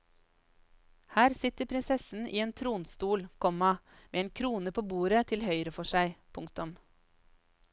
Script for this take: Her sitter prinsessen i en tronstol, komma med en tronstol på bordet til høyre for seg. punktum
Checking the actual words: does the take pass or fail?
fail